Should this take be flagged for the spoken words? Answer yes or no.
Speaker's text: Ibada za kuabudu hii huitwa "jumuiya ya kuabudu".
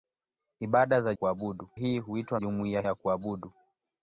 no